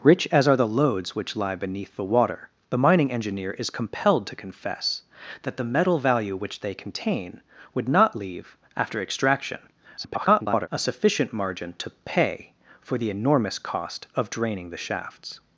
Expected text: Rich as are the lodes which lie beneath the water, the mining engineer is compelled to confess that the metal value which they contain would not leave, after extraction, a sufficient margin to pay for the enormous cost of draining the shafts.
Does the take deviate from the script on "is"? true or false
false